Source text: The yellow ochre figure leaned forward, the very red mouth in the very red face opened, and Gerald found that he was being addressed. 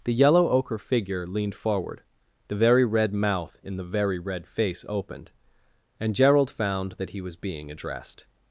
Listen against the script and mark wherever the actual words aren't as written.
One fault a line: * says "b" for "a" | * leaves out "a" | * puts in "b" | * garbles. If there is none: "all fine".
all fine